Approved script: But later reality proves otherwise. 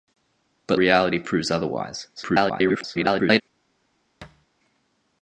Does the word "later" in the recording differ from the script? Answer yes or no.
yes